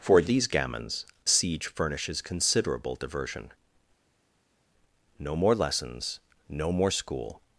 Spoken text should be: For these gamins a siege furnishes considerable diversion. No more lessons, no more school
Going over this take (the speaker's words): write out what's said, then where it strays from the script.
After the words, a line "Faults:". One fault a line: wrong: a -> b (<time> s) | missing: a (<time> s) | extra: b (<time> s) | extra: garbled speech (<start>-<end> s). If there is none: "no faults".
For these gamins siege furnishes considerable diversion. No more lessons, no more school
Faults:
missing: a (1.1 s)